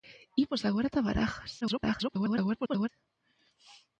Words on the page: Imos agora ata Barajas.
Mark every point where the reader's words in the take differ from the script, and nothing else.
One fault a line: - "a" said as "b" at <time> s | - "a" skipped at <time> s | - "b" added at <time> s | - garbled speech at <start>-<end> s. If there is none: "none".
- garbled speech at 1.6-2.9 s